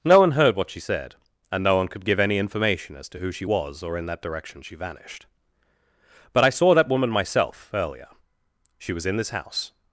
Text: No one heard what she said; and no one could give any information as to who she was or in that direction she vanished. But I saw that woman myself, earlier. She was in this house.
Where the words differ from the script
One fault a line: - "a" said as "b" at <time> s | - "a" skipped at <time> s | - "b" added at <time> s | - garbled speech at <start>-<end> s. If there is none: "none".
none